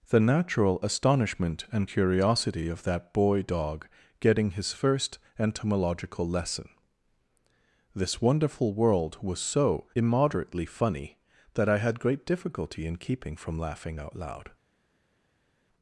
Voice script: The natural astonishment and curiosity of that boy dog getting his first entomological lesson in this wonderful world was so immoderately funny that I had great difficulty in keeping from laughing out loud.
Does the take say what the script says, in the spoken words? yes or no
no